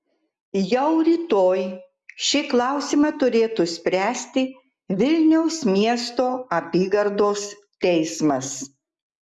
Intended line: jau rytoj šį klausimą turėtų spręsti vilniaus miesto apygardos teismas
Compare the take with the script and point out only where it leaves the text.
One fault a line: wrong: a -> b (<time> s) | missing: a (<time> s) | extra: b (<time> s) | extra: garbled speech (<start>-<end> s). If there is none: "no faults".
no faults